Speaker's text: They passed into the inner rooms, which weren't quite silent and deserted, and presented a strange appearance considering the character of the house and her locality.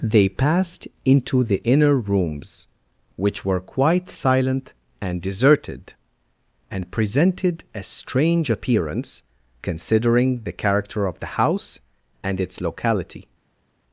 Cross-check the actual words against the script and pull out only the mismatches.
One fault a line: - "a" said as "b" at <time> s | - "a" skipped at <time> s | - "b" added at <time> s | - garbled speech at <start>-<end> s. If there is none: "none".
- "weren't" said as "were" at 3.5 s
- "her" said as "its" at 12.4 s